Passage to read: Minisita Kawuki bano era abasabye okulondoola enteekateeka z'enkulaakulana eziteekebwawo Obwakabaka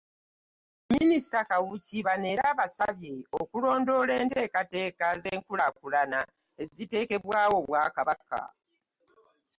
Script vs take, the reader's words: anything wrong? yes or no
no